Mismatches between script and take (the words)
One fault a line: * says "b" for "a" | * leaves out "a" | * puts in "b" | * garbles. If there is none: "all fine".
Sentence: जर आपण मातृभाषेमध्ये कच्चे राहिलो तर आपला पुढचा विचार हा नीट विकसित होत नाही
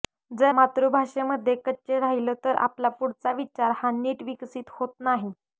* leaves out "आपण"